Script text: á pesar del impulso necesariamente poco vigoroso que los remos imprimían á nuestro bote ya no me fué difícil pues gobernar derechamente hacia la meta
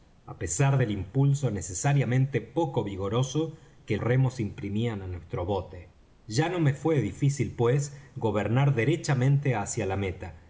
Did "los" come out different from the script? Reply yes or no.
yes